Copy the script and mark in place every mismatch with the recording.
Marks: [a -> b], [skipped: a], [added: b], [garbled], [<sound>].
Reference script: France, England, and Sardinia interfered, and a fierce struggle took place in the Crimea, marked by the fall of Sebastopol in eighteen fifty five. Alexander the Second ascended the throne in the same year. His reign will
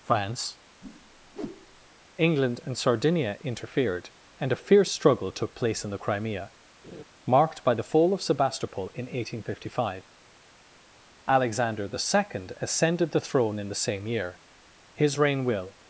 France, [whoosh] England, and Sardinia interfered, and a fierce struggle took place in the Crimea, [laugh] marked by the fall of Sebastopol in eighteen fifty five. Alexander the Second ascended the throne in the same year. His reign will